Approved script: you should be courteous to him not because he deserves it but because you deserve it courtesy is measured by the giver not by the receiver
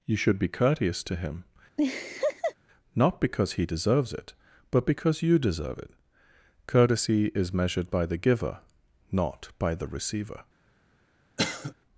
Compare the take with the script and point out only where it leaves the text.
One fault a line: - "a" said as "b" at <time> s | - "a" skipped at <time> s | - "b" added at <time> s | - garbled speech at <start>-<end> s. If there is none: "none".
none